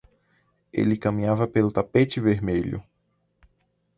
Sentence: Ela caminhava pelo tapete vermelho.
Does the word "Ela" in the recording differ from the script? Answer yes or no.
yes